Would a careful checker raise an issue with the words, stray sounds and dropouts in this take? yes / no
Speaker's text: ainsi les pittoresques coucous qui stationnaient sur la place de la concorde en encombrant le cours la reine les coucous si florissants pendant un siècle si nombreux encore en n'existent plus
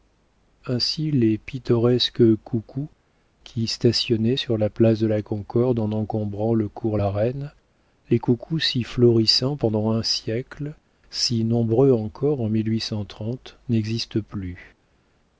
no